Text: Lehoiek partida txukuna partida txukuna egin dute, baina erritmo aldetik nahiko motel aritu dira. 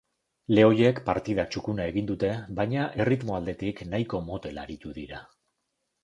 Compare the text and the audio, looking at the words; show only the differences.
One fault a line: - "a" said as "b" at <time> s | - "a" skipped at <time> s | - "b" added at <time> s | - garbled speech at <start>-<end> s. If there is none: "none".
- "partida txukuna" skipped at 1.8 s